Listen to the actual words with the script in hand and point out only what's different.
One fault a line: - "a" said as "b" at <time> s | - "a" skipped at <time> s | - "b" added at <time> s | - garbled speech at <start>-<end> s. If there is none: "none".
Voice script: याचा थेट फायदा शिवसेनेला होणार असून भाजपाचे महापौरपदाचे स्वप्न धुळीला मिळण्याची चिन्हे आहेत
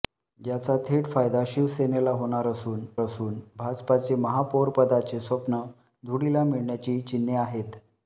- "असून" added at 3.0 s